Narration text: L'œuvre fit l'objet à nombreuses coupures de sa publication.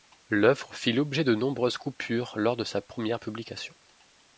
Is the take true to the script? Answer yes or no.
no